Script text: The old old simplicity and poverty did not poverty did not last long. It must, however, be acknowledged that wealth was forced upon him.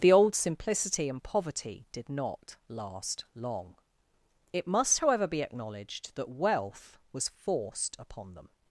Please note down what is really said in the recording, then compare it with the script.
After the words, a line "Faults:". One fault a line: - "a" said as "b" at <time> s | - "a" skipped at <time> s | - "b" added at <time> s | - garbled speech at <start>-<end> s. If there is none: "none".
The old simplicity and poverty did not last long. It must, however, be acknowledged that wealth was forced upon them.
Faults:
- "old" skipped at 0.3 s
- "poverty did not" skipped at 2.5 s
- "him" said as "them" at 8.3 s